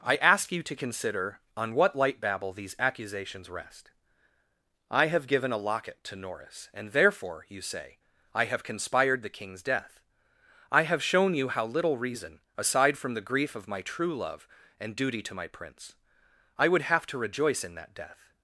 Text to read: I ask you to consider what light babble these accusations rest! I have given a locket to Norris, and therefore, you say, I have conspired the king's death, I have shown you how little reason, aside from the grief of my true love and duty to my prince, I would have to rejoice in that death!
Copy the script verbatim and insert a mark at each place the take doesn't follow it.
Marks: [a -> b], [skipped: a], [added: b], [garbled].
I ask you to consider [added: on] what light babble these accusations rest! I have given a locket to Norris, and therefore, you say, I have conspired the king's death, I have shown you how little reason, aside from the grief of my true love and duty to my prince, I would have to rejoice in that death!